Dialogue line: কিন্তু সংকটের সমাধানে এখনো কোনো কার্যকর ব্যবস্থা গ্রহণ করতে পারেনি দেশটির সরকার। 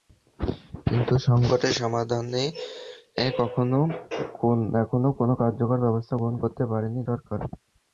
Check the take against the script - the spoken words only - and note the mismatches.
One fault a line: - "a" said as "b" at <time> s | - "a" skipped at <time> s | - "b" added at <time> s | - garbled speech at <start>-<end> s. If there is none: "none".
- "দেশটির" skipped at 7.0 s